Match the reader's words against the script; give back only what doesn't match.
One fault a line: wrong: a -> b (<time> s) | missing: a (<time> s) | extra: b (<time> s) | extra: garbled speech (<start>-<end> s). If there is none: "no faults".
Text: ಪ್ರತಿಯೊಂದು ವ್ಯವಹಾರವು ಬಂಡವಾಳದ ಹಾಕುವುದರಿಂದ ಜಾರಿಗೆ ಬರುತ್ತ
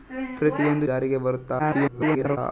missing: ವ್ಯವಹಾರವು ಬಂಡವಾಳದ ಹಾಕುವುದರಿಂದ (0.8 s)
extra: garbled speech (1.6-2.4 s)